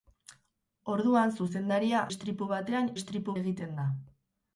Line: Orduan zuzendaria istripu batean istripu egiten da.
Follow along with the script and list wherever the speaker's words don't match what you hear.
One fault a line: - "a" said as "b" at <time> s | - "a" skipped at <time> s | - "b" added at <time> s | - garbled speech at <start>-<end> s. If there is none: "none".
none